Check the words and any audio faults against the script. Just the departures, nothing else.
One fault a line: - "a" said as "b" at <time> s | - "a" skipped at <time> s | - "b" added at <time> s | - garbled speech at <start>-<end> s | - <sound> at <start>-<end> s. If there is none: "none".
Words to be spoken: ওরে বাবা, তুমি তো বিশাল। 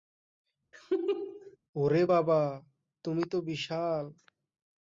- laugh at 0.7-1.6 s